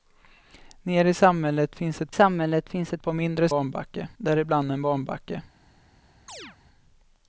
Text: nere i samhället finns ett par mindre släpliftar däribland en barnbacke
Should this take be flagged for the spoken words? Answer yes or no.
yes